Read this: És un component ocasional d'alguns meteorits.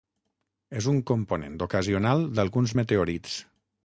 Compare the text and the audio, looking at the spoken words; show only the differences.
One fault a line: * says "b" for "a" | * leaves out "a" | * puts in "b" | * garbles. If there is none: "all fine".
all fine